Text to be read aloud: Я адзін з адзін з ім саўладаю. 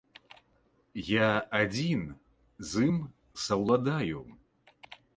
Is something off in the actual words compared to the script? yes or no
yes